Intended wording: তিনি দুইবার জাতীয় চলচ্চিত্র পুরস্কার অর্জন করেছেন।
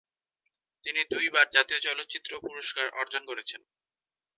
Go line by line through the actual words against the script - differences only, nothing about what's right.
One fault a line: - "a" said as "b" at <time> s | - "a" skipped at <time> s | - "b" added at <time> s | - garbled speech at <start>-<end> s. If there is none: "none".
none